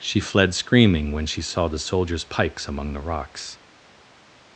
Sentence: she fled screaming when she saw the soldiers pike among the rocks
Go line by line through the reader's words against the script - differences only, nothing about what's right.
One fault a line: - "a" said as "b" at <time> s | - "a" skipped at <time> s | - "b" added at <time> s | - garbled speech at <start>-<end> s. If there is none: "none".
- "pike" said as "pikes" at 2.2 s